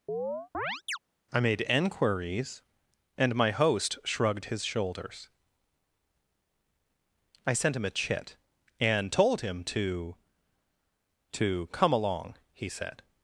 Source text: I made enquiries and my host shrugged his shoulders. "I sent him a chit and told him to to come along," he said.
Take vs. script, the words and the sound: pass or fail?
fail